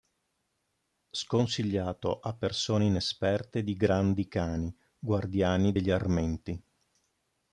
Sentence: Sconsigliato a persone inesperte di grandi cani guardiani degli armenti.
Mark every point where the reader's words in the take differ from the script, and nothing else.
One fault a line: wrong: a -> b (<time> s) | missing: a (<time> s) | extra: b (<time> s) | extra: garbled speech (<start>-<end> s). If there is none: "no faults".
no faults